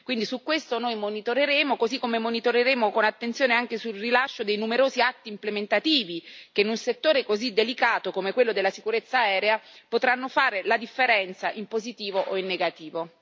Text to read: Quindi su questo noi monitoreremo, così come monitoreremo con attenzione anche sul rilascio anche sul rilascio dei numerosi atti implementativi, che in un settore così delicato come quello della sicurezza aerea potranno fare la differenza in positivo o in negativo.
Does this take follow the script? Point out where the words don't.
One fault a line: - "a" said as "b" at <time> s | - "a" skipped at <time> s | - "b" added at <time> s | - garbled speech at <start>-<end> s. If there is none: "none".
- "anche sul rilascio" skipped at 4.4 s